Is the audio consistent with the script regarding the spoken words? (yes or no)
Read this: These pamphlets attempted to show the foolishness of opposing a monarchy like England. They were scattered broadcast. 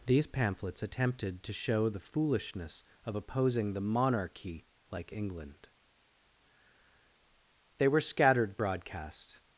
no